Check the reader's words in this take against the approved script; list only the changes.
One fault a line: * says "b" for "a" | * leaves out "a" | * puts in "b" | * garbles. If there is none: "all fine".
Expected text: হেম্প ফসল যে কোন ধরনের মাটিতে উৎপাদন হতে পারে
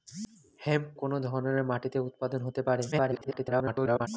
* leaves out "ফসল যে"
* garbles